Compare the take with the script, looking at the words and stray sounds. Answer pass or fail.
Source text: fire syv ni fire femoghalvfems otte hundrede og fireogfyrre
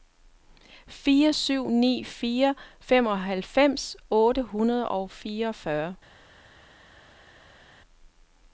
pass